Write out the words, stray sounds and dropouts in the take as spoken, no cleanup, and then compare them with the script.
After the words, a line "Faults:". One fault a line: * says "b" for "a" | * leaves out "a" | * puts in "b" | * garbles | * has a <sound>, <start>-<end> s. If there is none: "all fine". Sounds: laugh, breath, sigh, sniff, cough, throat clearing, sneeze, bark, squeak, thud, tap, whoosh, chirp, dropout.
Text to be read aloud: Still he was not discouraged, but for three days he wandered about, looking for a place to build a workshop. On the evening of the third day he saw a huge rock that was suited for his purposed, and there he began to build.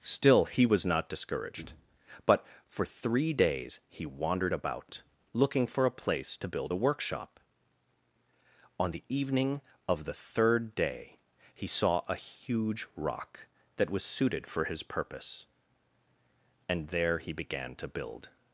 Still he was not discouraged, but for three days he wandered about, looking for a place to build a workshop. On the evening of the third day he saw a huge rock that was suited for his purpose, and there he began to build.
Faults:
* says "purpose" for "purposed"